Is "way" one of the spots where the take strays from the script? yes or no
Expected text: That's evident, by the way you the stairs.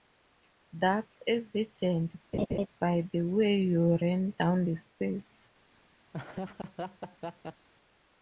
no